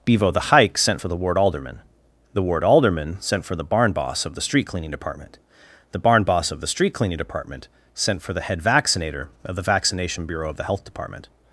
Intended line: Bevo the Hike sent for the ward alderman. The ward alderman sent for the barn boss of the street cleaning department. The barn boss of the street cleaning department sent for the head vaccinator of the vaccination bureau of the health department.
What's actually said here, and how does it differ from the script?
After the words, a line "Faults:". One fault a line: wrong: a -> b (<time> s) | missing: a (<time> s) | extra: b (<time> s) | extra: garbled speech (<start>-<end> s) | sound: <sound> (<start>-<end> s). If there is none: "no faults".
Bevo the Hike sent for the ward alderman. The ward alderman sent for the barn boss of the street cleaning department. The barn boss of the street cleaning department sent for the head vaccinator of the vaccination bureau of the health department.
Faults:
no faults